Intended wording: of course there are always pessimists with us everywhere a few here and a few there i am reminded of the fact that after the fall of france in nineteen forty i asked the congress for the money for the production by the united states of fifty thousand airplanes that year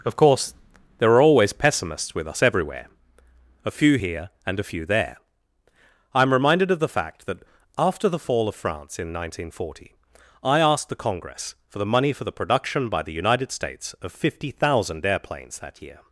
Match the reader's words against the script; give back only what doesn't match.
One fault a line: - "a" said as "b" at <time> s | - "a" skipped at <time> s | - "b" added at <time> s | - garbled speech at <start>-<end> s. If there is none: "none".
none